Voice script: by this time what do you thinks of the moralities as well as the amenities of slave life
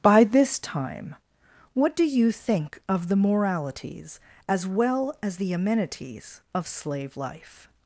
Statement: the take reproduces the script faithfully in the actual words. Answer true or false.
false